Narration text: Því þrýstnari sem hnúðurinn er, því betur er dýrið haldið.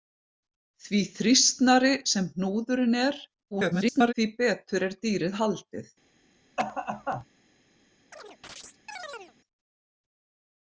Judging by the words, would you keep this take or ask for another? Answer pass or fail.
fail